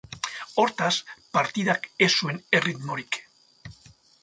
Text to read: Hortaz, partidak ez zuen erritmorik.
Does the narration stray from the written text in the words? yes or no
no